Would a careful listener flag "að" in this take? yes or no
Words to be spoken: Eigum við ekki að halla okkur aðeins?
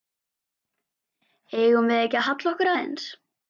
no